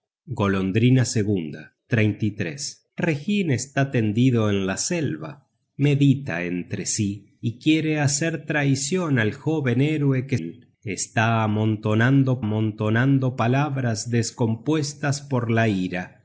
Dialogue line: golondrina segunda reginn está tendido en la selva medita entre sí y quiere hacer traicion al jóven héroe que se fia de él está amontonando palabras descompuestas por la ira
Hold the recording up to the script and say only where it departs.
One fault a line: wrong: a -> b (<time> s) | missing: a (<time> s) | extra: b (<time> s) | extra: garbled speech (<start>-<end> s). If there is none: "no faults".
missing: se fia de (10.4 s)
extra: amontonando (12.4 s)